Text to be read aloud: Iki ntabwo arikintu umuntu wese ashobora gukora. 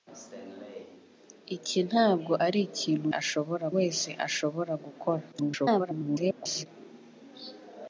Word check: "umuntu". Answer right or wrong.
wrong